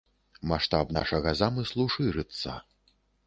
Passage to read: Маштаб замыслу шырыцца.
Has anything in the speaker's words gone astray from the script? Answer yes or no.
yes